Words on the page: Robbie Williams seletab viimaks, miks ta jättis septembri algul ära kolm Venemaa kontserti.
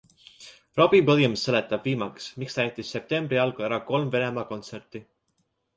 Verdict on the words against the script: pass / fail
pass